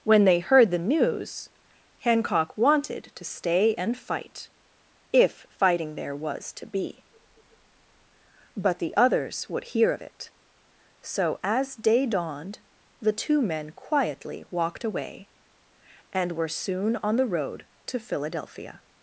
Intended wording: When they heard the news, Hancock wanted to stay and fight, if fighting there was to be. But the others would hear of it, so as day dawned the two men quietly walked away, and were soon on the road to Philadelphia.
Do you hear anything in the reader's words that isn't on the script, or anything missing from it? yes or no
no